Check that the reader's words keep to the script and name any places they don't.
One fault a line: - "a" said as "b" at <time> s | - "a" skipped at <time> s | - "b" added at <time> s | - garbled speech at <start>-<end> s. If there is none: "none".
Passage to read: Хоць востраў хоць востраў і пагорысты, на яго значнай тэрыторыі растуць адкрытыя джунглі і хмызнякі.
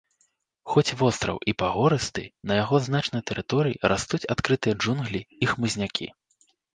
- "хоць востраў" skipped at 1.4 s